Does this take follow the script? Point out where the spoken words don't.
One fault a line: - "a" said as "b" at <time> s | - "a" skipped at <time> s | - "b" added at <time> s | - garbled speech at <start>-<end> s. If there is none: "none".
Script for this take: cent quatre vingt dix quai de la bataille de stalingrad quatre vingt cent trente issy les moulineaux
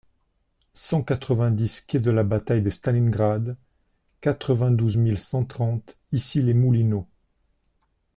- "douze mille" added at 4.7 s